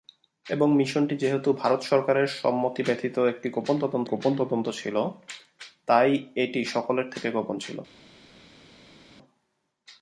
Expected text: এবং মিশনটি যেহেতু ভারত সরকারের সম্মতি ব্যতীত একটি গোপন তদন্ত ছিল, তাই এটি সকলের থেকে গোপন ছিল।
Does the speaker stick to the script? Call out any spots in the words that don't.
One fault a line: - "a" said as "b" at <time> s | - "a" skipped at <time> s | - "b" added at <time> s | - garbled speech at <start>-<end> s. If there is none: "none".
- "গোপন তদন্ত" added at 4.0 s